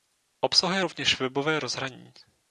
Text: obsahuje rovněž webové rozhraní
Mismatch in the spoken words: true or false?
false